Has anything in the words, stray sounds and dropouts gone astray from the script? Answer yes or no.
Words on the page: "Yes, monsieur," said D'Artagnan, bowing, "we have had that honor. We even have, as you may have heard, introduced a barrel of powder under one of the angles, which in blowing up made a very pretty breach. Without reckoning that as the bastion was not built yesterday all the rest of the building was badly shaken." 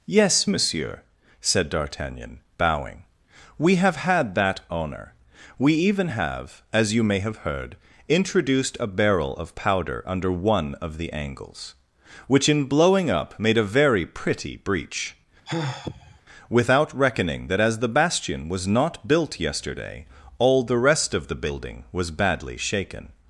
yes